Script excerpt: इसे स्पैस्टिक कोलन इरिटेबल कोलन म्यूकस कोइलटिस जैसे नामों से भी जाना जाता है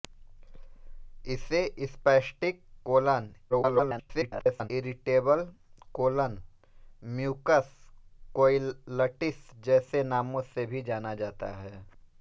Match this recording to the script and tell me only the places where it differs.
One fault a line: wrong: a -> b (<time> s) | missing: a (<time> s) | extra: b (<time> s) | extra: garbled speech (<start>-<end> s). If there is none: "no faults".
extra: garbled speech (3.5-4.7 s)